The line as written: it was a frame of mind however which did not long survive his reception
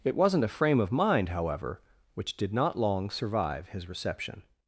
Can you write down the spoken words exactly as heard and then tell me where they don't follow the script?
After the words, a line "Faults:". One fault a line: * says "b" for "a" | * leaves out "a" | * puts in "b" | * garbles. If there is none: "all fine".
it wasn't a frame of mind however which did not long survive his reception
Faults:
* says "wasn't" for "was"